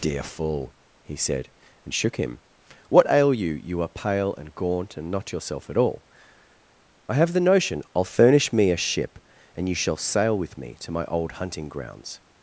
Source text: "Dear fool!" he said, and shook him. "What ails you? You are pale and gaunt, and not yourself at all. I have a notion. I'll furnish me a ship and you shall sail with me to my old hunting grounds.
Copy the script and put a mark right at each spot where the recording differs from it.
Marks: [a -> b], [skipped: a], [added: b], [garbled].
"Dear fool!" he said, and shook him. "What [ails -> ail] you? You are pale and gaunt, and not yourself at all. I have [a -> the] notion. I'll furnish me a ship and you shall sail with me to my old hunting grounds.